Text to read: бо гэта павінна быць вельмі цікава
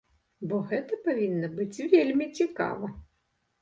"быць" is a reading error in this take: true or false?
false